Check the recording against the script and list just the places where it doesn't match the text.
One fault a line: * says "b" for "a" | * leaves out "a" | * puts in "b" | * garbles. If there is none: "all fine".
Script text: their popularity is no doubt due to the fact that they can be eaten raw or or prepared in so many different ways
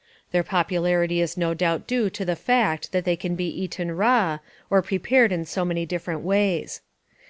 * leaves out "or"